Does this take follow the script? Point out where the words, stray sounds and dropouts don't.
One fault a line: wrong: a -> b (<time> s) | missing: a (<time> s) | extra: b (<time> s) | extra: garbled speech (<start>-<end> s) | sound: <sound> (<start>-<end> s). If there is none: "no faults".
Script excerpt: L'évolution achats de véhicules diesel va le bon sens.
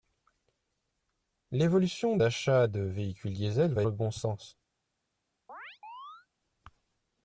sound: chirp (5.5-6.3 s)